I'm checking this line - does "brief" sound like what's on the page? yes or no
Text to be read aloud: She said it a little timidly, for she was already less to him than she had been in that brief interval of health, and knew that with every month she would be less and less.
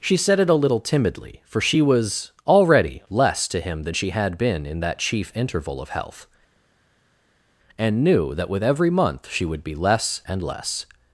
no